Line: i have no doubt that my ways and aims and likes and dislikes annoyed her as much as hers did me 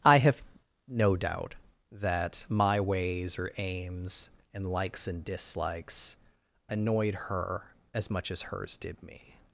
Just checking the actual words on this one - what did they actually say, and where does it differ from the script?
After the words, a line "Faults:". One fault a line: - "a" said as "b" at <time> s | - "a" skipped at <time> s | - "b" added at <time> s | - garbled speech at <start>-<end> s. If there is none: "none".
i have no doubt that my ways or aims and likes and dislikes annoyed her as much as hers did me
Faults:
- "and" said as "or" at 3.4 s